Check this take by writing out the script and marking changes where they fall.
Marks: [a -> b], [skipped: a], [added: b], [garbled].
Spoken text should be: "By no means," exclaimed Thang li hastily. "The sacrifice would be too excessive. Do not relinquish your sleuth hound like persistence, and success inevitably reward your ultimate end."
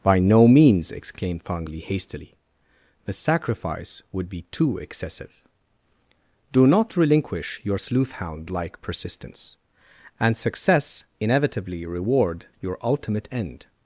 "By no means," exclaimed Thang li hastily. "The sacrifice would be too excessive. Do not relinquish your sleuth hound like persistence, and success inevitably reward your ultimate end."